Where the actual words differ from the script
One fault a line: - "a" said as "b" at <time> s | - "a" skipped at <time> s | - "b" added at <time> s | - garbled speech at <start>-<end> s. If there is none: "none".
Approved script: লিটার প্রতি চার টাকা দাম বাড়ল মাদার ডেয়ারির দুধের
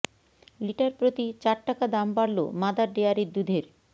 none